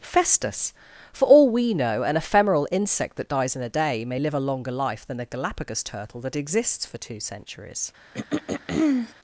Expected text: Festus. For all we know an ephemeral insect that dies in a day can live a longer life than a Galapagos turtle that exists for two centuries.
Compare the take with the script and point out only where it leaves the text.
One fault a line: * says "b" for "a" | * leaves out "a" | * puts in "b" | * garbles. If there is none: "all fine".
* says "may" for "can"